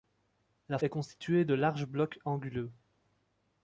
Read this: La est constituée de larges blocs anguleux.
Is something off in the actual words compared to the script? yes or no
no